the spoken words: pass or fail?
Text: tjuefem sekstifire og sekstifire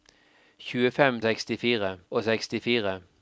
pass